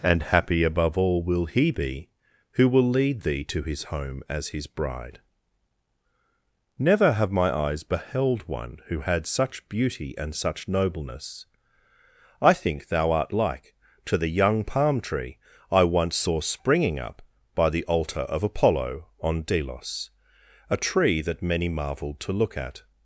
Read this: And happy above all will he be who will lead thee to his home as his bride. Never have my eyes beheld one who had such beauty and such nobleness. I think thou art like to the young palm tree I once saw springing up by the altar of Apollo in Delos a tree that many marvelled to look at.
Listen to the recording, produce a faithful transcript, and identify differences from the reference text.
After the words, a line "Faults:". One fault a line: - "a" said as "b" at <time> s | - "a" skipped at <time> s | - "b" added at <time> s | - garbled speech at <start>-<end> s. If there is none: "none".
And happy above all will he be who will lead thee to his home as his bride. Never have my eyes beheld one who had such beauty and such nobleness. I think thou art like to the young palm tree I once saw springing up by the altar of Apollo on Delos a tree that many marvelled to look at.
Faults:
- "in" said as "on" at 19.2 s